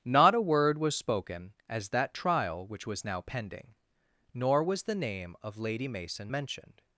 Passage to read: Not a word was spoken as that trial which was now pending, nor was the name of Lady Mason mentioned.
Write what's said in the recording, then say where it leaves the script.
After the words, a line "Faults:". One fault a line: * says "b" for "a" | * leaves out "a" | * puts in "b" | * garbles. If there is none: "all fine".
Not a word was spoken as that trial which was now pending, nor was the name of Lady Mason mentioned.
Faults:
all fine